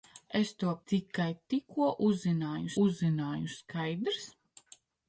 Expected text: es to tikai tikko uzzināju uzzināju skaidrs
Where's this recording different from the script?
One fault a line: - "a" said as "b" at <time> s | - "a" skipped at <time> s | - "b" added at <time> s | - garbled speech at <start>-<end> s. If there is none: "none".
none